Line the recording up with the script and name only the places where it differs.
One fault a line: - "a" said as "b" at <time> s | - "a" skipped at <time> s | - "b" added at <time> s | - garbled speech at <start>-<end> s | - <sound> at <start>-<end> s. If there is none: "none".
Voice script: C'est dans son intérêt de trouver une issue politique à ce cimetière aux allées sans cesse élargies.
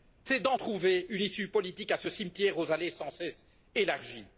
- "son intérêt de" skipped at 0.6 s